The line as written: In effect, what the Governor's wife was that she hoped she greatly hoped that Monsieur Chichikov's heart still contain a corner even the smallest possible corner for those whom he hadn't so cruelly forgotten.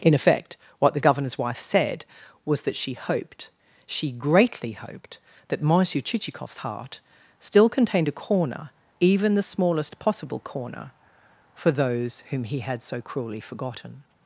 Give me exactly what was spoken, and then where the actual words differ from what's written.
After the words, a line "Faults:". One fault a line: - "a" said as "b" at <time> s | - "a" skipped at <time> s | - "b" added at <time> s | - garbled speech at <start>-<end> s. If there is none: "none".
In effect, what the Governor's wife said was that she hoped she greatly hoped that Monsieur Chichikov's heart still contained a corner even the smallest possible corner for those whom he had so cruelly forgotten.
Faults:
- "said" added at 1.6 s
- "contain" said as "contained" at 7.7 s
- "hadn't" said as "had" at 12.6 s